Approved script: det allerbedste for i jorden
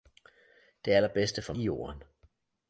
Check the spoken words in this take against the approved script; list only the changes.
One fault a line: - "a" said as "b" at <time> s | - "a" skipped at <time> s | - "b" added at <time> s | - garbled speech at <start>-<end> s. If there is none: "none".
none